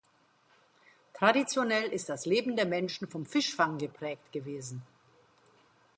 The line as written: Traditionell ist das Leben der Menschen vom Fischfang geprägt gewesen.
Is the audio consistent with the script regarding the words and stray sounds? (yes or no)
yes